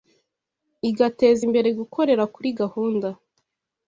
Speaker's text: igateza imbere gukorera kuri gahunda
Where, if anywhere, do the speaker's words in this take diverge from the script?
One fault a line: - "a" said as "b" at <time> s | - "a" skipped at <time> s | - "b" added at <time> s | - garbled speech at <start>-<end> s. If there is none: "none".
none